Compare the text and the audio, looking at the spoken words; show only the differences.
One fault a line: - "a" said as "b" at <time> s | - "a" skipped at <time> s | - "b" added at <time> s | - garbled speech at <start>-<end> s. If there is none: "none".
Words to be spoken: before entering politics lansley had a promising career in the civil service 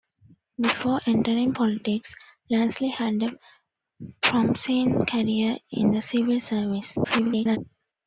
- garbled speech at 7.0-7.6 s